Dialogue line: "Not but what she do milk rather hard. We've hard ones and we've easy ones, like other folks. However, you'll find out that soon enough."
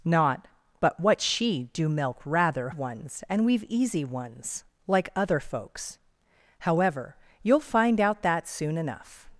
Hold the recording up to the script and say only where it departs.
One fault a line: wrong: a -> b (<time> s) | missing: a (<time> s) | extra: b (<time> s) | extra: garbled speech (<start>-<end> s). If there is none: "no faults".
missing: hard We've hard (2.7 s)